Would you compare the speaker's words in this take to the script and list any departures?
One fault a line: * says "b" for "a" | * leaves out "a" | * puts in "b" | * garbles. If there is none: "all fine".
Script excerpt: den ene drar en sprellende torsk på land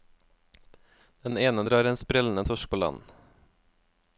all fine